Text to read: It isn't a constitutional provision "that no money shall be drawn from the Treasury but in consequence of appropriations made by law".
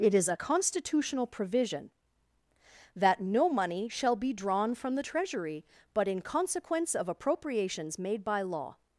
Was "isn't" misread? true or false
true